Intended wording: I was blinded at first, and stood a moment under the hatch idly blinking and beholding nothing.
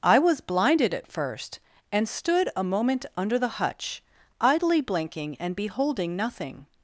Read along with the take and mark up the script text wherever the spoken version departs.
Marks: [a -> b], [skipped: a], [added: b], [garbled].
I was blinded at first, and stood a moment under the [hatch -> hutch] idly blinking and beholding nothing.